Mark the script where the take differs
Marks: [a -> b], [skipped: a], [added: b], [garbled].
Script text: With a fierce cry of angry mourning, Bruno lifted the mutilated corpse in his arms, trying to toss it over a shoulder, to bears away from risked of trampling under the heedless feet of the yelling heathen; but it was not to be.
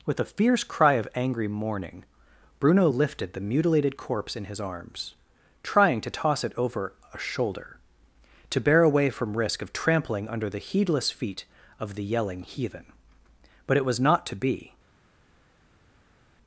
With a fierce cry of angry mourning, Bruno lifted the mutilated corpse in his arms, trying to toss it over a shoulder, to [bears -> bear] away from [risked -> risk] of trampling under the heedless feet of the yelling heathen; but it was not to be.